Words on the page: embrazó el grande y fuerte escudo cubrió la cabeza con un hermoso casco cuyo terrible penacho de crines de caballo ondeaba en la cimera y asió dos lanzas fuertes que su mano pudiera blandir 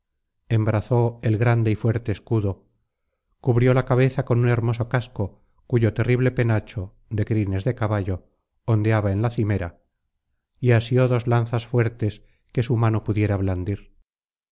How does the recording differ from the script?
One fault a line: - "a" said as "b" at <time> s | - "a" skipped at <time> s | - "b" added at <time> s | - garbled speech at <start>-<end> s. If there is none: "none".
none